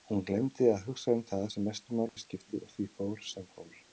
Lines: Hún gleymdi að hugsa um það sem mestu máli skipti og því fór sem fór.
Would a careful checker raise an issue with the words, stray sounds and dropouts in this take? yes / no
yes